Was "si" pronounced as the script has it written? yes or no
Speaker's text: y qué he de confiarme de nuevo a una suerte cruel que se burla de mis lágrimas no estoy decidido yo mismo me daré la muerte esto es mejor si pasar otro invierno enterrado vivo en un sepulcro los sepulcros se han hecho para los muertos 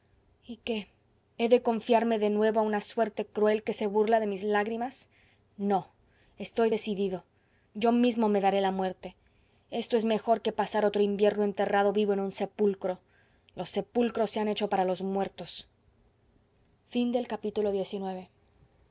no